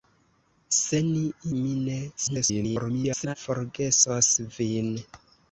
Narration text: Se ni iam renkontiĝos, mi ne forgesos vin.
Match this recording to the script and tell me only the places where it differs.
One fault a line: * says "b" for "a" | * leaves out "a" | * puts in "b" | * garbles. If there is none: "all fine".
* leaves out "iam renkontiĝos"
* garbles